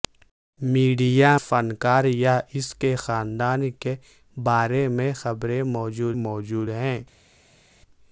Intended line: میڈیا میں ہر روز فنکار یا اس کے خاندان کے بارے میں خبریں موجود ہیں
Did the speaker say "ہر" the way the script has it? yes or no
no